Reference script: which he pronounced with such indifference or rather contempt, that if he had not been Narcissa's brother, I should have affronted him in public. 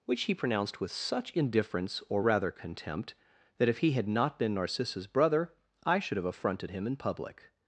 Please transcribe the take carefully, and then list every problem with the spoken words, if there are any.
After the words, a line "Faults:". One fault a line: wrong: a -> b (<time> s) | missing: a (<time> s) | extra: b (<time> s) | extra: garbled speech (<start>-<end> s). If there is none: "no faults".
which he pronounced with such indifference or rather contempt, that if he had not been Narcissa's brother, I should have affronted him in public.
Faults:
no faults